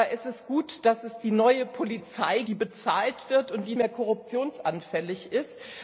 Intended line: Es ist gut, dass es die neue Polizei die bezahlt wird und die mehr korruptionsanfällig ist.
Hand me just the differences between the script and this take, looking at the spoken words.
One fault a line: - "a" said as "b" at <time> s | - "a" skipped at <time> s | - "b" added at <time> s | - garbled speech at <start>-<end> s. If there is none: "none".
none